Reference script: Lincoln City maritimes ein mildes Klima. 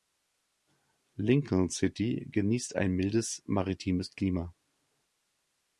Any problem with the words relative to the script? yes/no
yes